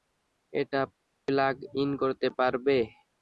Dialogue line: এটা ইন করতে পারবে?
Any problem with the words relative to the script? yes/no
yes